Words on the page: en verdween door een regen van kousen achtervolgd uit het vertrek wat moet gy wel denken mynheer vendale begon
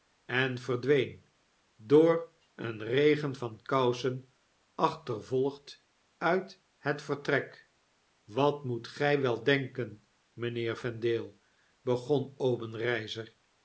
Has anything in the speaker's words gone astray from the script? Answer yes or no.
no